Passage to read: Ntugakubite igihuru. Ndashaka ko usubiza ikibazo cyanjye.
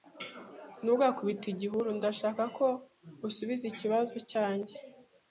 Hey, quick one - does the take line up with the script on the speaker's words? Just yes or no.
yes